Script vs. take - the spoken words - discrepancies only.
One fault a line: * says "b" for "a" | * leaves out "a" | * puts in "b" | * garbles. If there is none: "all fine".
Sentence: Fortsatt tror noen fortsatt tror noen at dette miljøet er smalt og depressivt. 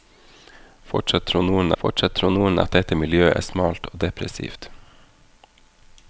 all fine